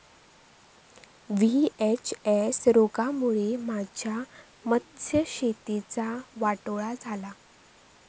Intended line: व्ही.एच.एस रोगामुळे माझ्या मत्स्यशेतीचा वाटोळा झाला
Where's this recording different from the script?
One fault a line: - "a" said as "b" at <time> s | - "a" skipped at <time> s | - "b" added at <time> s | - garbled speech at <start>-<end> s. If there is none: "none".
none